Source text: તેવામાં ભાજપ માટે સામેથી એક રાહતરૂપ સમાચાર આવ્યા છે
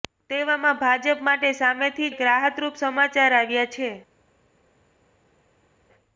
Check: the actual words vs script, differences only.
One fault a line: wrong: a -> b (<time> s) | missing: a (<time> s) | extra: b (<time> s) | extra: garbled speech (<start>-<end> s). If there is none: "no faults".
no faults